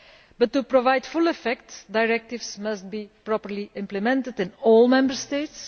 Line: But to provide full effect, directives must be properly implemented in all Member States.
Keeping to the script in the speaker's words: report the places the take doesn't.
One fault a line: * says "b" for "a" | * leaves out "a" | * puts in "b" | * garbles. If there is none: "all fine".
all fine